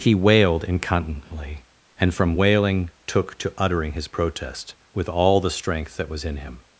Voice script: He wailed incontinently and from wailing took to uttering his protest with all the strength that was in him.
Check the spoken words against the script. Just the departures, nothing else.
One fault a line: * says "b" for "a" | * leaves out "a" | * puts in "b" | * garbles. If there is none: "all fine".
all fine